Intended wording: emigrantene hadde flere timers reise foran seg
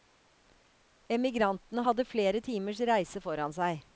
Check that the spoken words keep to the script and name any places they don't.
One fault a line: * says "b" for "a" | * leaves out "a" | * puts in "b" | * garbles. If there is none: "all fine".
all fine